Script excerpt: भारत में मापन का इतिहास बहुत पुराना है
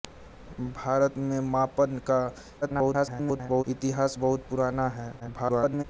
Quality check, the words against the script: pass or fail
fail